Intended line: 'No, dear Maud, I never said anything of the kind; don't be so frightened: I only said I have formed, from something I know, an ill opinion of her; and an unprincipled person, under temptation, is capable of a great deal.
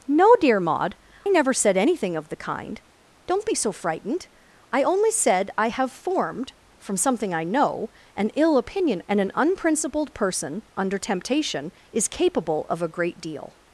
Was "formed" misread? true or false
false